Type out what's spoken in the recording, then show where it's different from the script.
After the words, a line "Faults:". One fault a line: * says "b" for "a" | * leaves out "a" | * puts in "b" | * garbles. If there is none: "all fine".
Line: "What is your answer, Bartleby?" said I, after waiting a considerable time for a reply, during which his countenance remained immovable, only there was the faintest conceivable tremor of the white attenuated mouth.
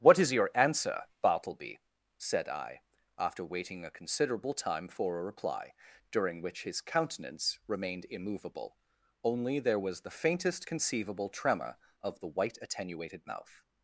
"What is your answer, Bartleby?" said I, after waiting a considerable time for a reply, during which his countenance remained immovable, only there was the faintest conceivable tremor of the white attenuated mouth.
Faults:
all fine